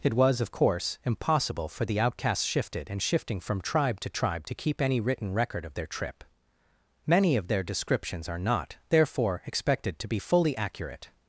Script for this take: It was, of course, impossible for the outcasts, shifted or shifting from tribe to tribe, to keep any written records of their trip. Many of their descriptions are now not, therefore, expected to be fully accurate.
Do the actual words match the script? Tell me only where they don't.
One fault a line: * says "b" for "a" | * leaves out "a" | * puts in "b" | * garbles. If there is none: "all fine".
* says "and" for "or"
* says "record" for "records"
* leaves out "now"